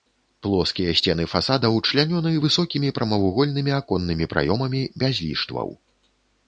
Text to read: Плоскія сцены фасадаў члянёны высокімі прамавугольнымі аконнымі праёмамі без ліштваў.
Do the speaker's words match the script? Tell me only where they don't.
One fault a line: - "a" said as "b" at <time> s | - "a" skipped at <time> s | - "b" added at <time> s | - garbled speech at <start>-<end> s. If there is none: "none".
none